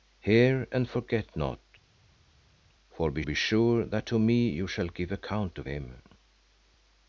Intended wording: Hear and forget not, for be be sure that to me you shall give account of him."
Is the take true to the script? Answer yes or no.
yes